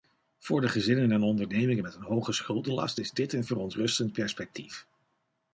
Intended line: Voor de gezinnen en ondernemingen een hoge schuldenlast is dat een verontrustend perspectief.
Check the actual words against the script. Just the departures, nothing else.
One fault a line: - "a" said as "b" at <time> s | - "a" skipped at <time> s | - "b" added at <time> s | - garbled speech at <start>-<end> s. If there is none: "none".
- "met" added at 1.8 s
- "dat" said as "dit" at 3.1 s